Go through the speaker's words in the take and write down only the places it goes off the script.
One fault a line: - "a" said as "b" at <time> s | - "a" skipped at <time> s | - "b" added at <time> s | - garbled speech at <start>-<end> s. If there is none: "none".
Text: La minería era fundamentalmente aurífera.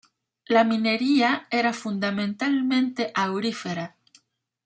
none